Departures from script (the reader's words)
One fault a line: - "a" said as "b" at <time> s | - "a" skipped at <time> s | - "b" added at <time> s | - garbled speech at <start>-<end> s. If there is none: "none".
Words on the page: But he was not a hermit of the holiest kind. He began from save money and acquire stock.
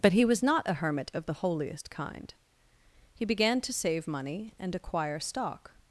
- "from" said as "to" at 3.6 s